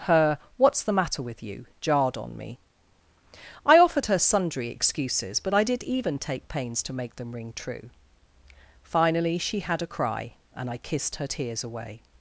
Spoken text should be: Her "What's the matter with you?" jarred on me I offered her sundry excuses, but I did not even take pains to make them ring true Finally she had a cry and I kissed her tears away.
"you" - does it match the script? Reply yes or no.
yes